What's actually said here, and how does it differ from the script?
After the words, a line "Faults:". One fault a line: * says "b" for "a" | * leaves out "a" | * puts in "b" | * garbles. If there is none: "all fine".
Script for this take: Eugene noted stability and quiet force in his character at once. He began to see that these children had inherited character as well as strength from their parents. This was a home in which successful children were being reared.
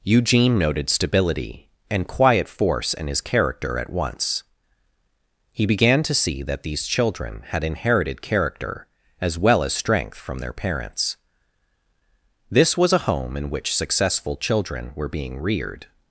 Eugene noted stability and quiet force in his character at once. He began to see that these children had inherited character as well as strength from their parents. This was a home in which successful children were being reared.
Faults:
all fine